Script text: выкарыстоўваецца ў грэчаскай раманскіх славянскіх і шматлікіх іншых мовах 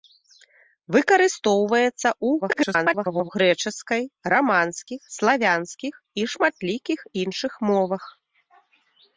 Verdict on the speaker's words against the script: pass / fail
fail